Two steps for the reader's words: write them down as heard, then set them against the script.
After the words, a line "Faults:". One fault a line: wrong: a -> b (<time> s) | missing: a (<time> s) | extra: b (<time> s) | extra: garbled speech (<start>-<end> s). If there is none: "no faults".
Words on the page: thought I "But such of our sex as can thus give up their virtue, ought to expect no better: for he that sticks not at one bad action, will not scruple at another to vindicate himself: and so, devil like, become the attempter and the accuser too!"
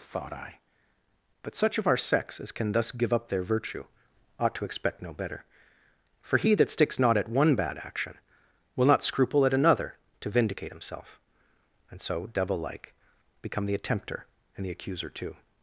thought I "But such of our sex as can thus give up their virtue, ought to expect no better: for he that sticks not at one bad action, will not scruple at another to vindicate himself: and so, devil like, become the attempter and the accuser too!"
Faults:
no faults